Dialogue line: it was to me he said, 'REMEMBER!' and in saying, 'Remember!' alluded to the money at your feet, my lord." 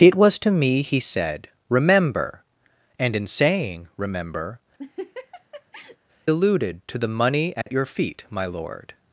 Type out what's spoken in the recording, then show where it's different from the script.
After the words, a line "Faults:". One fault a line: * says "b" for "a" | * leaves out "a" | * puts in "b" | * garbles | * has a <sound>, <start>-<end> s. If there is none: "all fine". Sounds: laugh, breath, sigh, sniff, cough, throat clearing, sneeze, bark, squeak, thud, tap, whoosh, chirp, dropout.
it was to me he said, 'REMEMBER!' and in saying, 'Remember!' alluded to the money at your feet, my lord."
Faults:
* has a laugh, 4.8-6.0 s
* has a dropout, 7.6-7.7 s